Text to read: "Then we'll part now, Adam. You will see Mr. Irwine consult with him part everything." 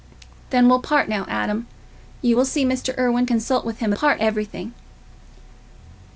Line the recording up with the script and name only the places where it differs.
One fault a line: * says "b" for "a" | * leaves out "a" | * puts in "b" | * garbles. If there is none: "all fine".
all fine